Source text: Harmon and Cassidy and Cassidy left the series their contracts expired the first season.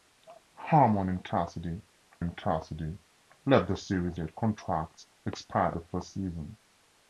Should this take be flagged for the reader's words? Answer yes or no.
no